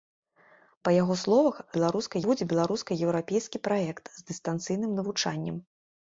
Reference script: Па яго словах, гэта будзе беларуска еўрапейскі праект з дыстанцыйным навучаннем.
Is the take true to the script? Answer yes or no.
no